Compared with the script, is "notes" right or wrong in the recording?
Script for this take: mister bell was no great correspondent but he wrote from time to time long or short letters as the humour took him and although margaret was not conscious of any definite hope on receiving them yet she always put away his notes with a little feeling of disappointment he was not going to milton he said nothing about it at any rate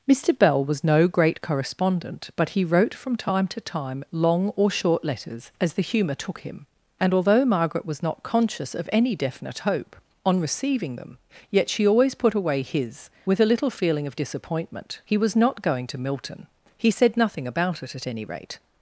wrong